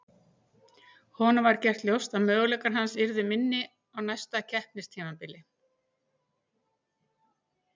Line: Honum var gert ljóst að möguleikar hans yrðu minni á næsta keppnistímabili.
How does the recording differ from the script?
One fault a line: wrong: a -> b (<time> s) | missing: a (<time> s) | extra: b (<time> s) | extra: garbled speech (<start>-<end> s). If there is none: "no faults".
no faults